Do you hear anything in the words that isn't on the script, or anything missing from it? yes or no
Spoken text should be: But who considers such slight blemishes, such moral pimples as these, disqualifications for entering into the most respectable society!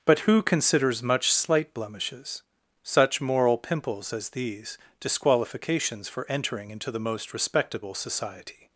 yes